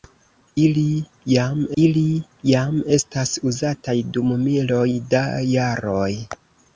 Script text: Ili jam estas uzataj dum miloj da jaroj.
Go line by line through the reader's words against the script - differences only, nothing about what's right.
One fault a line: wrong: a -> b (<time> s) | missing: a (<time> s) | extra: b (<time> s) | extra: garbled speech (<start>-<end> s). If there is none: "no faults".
extra: ili jam (1.8 s)